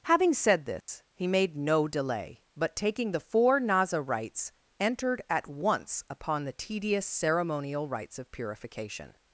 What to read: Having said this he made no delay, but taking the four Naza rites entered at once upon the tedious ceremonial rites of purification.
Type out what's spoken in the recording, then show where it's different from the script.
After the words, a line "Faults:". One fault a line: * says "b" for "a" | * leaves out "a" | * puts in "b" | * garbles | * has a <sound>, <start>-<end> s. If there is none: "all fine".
Having said this he made no delay, but taking the four Naza rites entered at once upon the tedious ceremonial rites of purification.
Faults:
* has a dropout, 0.8-0.9 s